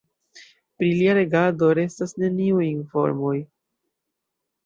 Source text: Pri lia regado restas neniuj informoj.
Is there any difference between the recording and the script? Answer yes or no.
no